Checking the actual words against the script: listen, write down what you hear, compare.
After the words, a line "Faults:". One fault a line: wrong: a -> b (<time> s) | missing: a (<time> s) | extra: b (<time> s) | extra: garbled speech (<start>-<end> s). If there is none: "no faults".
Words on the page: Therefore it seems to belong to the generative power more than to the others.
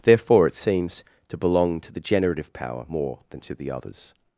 Therefore it seems to belong to the generative power more than to the others.
Faults:
no faults